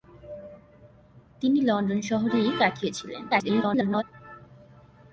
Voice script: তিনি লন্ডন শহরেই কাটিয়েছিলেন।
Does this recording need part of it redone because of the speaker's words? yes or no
yes